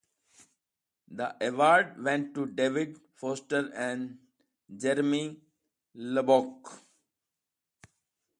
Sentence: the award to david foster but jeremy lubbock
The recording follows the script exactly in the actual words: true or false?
false